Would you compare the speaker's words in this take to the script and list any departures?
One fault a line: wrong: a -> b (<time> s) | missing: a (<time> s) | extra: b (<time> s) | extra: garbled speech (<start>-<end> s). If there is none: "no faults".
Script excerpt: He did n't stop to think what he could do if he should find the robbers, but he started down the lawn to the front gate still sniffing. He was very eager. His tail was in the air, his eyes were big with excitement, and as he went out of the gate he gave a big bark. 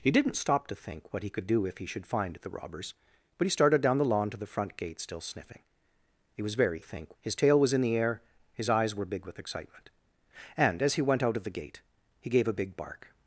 wrong: eager -> think (6.8 s)